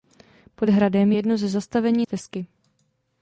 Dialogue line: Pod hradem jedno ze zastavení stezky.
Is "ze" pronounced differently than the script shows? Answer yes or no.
no